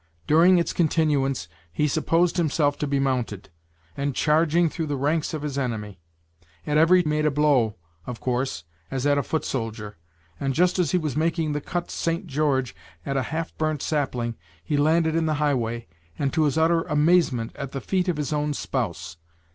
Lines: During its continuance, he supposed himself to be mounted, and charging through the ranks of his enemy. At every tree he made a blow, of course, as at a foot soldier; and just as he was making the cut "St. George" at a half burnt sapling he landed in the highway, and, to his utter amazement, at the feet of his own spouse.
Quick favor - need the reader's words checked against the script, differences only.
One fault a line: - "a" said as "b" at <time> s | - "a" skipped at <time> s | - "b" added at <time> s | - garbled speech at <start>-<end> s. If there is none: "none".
- "tree he" skipped at 7.0 s